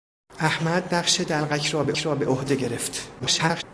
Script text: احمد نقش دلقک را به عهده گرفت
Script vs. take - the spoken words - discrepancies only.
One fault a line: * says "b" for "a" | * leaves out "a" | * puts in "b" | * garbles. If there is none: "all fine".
* puts in "را به"
* garbles